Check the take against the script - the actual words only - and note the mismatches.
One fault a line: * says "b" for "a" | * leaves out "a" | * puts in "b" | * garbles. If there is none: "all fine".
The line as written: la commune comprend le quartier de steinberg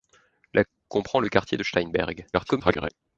* leaves out "commune"
* garbles